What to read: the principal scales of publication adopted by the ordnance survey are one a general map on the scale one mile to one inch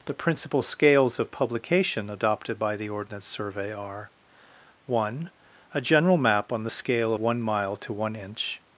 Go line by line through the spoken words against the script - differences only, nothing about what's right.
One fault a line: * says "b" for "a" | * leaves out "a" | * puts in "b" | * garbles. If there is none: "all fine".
all fine